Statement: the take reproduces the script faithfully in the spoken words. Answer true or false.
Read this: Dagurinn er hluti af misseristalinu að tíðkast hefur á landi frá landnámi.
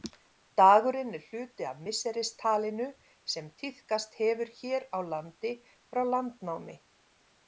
false